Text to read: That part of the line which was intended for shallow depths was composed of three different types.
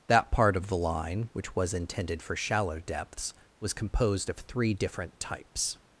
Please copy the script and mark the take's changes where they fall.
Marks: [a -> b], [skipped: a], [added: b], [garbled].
That part of the line which was intended for shallow depths was composed of three different types.